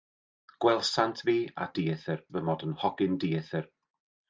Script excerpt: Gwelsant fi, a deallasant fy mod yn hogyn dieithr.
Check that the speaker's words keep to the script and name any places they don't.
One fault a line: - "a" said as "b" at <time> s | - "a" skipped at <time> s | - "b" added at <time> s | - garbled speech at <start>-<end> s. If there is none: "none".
- "deallasant" said as "dieithr" at 1.8 s